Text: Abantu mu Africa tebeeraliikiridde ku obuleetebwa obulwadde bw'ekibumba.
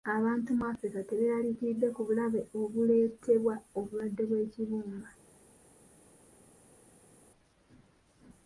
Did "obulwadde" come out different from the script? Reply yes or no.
no